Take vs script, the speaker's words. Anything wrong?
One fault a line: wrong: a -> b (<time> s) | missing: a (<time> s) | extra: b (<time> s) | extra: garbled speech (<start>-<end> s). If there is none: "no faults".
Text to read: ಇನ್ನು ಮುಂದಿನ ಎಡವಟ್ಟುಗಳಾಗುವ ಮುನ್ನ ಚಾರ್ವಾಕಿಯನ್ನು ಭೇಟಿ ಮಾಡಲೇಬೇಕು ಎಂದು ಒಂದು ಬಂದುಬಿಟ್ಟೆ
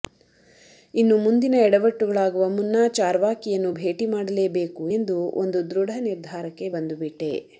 extra: ದೃಢ ನಿರ್ಧಾರಕ್ಕೆ (5.7 s)